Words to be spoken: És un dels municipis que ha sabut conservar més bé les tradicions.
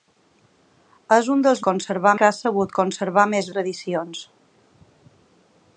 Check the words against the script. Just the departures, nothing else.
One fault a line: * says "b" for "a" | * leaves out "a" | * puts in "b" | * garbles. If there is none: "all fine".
* says "conservar" for "municipis"
* leaves out "bé les"